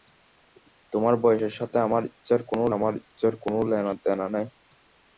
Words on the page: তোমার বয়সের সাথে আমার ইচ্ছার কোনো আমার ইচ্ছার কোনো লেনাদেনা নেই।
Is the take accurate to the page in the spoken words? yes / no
yes